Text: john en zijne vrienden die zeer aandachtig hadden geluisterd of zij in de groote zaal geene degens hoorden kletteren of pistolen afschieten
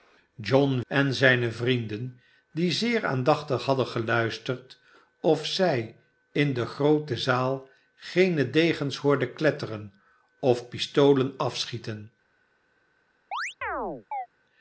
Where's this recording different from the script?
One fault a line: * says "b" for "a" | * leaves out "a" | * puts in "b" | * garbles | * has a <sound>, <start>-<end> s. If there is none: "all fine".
* has a chirp, 13.3-14.3 s